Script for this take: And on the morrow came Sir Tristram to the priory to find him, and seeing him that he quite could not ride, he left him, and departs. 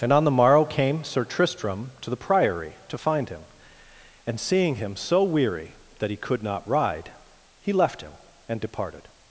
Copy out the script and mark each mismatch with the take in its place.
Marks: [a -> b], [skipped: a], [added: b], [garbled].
And on the morrow came Sir Tristram to the priory to find him, and seeing him [added: so weary] that he [skipped: quite] could not ride, he left him, and [departs. -> departed]